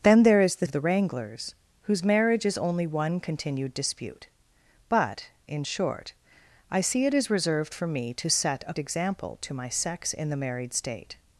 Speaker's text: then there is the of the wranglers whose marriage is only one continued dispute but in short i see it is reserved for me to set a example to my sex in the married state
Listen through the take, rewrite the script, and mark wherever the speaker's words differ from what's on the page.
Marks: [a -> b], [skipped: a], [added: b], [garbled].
then there is the of the wranglers whose marriage is only one continued dispute but in short i see it is reserved for me to set a example to my sex in the married state